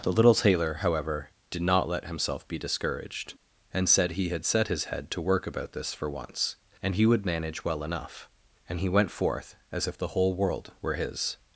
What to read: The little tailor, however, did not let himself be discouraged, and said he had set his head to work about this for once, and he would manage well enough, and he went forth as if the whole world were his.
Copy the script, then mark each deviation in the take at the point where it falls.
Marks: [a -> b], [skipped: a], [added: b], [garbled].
The little tailor, however, did not let himself be discouraged, and said he had set his head to work about this for once, and he would manage well enough, and he went forth as if the whole world were his.